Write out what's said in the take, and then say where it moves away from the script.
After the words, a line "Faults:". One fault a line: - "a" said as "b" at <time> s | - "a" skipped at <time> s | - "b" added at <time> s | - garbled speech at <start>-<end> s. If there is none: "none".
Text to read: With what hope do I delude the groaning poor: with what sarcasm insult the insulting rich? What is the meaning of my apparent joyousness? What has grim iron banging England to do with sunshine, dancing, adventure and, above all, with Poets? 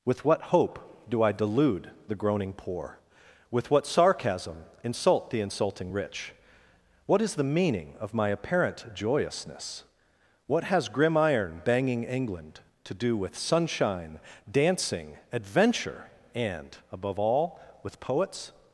With what hope do I delude the groaning poor: with what sarcasm insult the insulting rich? What is the meaning of my apparent joyousness? What has grim iron banging England to do with sunshine, dancing, adventure and, above all, with Poets?
Faults:
none